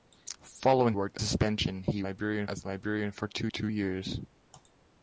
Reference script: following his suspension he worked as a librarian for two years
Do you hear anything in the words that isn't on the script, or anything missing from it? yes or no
yes